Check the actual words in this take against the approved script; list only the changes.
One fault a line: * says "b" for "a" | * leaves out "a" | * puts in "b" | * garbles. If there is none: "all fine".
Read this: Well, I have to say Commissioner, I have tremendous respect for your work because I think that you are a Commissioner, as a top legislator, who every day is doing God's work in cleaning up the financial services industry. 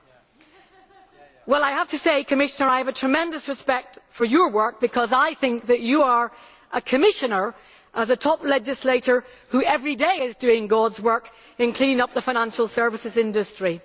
all fine